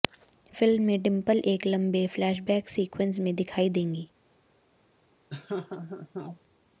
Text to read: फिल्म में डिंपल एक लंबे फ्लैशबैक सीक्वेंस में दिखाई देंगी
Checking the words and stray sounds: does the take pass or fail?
fail